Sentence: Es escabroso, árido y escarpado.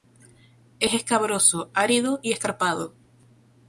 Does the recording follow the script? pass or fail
pass